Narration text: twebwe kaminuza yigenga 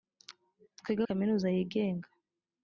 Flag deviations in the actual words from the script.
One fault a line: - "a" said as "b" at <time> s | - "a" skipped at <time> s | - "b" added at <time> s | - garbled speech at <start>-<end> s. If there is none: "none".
none